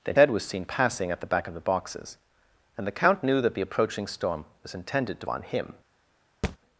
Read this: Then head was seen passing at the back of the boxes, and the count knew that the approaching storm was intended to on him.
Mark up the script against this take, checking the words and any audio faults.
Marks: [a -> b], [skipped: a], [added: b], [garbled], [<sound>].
Then head was seen passing at the back of the boxes, and the count knew that the approaching storm was intended to on him. [thud]